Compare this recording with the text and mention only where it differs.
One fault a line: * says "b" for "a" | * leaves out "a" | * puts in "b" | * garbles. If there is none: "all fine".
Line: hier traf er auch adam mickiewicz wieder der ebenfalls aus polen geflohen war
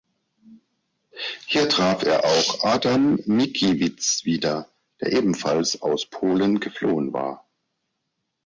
all fine